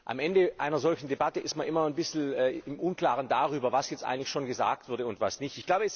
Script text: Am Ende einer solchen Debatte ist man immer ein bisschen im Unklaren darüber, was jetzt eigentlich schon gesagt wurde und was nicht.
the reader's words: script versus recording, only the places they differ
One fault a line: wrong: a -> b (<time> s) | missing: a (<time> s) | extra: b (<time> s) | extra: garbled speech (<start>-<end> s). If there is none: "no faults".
no faults